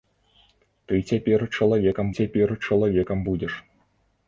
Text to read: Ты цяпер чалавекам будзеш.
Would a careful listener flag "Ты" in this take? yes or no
no